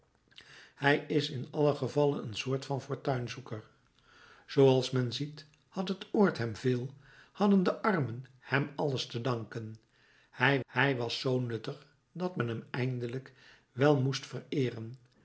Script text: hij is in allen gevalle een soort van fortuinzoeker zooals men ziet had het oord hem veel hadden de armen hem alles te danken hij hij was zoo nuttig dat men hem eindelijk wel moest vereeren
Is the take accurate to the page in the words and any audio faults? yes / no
yes